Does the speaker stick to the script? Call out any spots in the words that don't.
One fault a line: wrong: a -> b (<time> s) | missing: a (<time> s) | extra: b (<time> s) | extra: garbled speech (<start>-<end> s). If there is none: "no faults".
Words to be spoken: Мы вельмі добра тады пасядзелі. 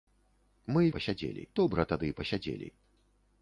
wrong: вельмі -> пасядзелі (1.0 s)